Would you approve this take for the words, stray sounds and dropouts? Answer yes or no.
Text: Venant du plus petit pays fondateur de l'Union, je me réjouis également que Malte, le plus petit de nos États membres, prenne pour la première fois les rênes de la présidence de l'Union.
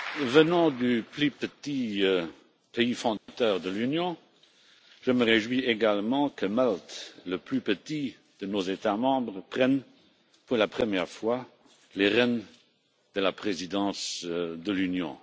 no